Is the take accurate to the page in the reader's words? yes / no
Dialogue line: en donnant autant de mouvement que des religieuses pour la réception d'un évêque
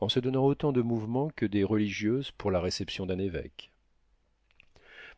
no